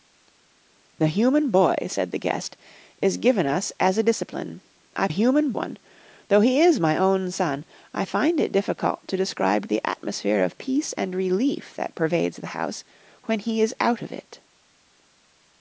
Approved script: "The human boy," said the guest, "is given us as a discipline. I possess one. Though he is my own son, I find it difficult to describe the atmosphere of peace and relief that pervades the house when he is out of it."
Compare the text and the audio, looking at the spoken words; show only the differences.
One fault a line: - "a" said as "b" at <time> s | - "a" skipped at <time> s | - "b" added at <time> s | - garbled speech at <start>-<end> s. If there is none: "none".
- "possess" said as "human" at 5.1 s